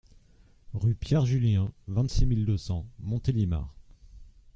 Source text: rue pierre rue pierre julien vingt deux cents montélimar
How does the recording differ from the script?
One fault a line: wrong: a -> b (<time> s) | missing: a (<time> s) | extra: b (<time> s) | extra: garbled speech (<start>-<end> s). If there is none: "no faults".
wrong: rue pierre julien vingt -> julien vingt six mille (1.3 s)